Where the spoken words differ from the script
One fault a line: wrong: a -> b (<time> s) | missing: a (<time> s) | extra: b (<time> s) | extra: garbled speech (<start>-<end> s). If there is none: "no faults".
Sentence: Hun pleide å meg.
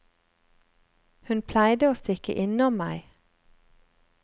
extra: stikke innom (2.0 s)